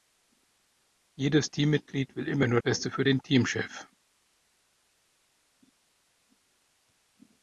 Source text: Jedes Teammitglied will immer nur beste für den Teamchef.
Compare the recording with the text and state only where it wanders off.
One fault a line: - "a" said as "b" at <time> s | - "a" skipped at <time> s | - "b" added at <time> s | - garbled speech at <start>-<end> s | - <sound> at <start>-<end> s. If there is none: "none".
none